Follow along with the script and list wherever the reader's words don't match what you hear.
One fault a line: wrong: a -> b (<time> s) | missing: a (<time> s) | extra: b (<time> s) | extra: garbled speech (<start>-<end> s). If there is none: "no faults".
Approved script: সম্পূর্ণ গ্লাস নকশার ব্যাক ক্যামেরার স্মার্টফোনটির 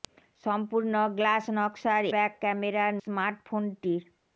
no faults